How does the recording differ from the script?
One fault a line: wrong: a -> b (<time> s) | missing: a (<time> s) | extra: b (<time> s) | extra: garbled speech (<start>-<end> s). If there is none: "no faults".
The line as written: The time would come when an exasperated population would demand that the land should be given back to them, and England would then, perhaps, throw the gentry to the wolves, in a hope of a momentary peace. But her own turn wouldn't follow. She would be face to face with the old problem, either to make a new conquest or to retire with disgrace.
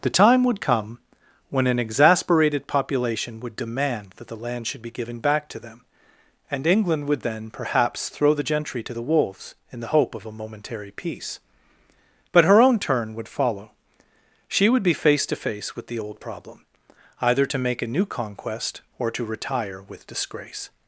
wrong: a -> the (9.8 s)
wrong: wouldn't -> would (13.1 s)